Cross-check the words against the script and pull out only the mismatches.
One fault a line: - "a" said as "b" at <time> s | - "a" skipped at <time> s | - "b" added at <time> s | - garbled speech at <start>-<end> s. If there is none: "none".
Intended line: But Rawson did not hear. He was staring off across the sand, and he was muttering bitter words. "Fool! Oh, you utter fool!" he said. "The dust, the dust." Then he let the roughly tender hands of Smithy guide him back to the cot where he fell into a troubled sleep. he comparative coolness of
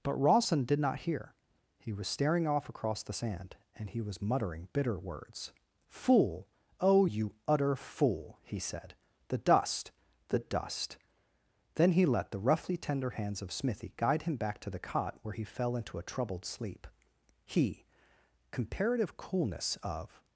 none